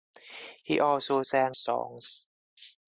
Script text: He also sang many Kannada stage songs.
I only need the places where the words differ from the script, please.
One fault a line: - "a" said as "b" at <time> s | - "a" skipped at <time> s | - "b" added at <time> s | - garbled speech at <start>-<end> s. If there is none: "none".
- "many Kannada stage" skipped at 1.6 s